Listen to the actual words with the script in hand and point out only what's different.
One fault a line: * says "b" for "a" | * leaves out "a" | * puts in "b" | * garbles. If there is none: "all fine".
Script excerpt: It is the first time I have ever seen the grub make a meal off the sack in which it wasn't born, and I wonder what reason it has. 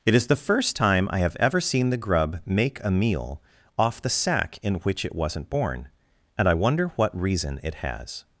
all fine